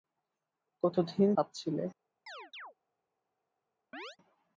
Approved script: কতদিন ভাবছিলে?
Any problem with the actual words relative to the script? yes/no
no